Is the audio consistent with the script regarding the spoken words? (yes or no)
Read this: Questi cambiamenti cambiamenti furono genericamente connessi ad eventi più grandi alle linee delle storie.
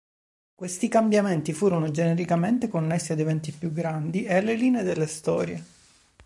no